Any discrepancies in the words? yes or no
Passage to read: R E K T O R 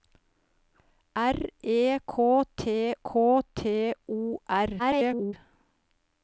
yes